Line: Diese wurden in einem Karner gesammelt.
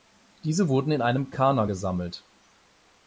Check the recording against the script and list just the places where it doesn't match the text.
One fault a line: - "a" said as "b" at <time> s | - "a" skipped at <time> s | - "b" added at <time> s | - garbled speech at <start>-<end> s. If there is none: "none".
none